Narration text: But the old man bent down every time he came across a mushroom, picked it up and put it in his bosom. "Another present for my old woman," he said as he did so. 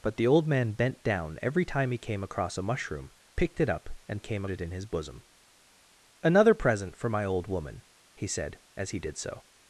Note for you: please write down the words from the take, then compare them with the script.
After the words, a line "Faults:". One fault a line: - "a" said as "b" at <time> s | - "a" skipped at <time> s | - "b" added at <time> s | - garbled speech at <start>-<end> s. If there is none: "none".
But the old man bent down every time he came across a mushroom, picked it up and came it in his bosom. "Another present for my old woman," he said as he did so.
Faults:
- "put" said as "came" at 4.2 s